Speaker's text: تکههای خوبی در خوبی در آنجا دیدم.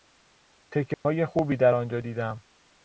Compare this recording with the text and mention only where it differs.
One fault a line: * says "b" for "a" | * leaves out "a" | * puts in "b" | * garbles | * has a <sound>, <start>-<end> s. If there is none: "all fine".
* has a dropout, 0.9-1.0 s
* leaves out "خوبی در"